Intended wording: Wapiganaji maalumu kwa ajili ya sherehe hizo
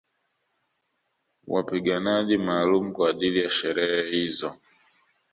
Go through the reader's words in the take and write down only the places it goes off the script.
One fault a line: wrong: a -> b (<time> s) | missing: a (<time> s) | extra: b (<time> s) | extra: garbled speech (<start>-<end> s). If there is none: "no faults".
no faults